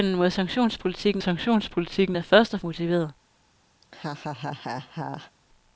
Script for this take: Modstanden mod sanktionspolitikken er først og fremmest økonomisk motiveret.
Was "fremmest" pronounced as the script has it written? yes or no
no